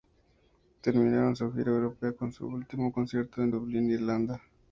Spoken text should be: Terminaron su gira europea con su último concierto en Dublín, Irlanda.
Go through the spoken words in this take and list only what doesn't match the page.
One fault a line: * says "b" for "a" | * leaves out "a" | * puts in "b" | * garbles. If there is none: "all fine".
all fine